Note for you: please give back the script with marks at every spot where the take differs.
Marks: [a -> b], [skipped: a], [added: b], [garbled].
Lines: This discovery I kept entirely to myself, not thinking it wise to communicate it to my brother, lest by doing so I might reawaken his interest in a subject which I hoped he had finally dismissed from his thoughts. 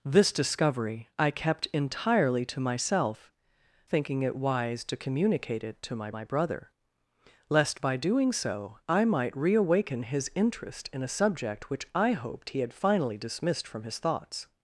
This discovery I kept entirely to myself, [skipped: not] thinking it wise to communicate it to my [added: my] brother, lest by doing so I might reawaken his interest in a subject which I hoped he had finally dismissed from his thoughts.